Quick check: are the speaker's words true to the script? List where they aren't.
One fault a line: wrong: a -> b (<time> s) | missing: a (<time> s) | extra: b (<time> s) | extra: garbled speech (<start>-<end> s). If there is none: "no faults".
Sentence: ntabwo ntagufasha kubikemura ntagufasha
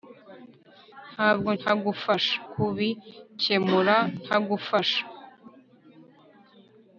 no faults